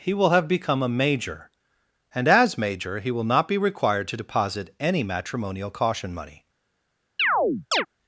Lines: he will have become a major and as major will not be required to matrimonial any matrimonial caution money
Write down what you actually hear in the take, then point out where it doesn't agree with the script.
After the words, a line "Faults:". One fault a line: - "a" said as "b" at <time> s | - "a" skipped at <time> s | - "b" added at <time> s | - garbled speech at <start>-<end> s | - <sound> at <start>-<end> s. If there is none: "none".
he will have become a major and as major he will not be required to deposit any matrimonial caution money
Faults:
- "he" added at 3.0 s
- "matrimonial" said as "deposit" at 4.2 s
- chirp at 7.2-7.9 s